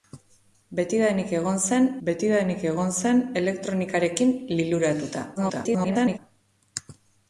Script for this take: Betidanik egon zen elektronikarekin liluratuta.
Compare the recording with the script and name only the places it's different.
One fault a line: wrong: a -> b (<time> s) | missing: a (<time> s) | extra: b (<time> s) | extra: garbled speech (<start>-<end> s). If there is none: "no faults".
extra: betidanik egon zen (2.1 s)
extra: garbled speech (5.4-6.2 s)